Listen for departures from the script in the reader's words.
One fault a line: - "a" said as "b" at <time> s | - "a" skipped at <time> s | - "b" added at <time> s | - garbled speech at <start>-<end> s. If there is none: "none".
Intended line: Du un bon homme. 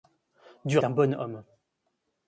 none